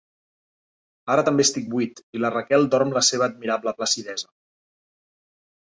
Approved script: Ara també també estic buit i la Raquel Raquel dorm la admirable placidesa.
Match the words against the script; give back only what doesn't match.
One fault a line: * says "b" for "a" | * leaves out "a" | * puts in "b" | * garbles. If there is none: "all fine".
* leaves out "també"
* leaves out "Raquel"
* puts in "seva"